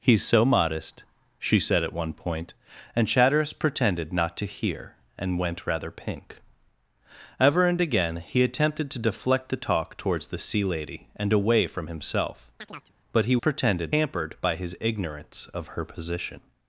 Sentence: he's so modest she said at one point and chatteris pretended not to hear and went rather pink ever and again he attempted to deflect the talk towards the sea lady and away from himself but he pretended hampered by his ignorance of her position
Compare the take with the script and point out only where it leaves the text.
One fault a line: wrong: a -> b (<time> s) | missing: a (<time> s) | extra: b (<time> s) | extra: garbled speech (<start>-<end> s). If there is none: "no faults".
no faults